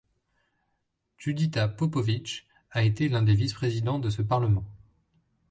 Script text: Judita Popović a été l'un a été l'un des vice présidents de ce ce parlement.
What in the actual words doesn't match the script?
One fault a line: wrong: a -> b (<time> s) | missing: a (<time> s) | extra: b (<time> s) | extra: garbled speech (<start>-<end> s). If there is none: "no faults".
missing: a été l'un (3.2 s)
missing: ce (4.2 s)